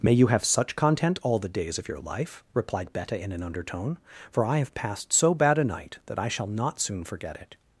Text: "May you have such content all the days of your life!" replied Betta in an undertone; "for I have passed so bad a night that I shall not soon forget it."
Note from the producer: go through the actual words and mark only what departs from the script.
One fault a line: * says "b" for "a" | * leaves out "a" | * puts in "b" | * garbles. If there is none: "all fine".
all fine